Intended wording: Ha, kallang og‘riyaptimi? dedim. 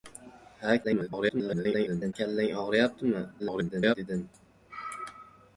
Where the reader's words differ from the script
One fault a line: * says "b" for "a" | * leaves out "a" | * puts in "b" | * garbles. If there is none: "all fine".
* garbles
* garbles